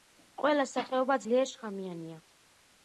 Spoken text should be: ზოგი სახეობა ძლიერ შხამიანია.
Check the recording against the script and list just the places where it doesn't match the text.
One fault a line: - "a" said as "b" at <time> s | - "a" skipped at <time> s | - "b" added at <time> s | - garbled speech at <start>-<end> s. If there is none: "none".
- "ზოგი" said as "ყველა" at 0.4 s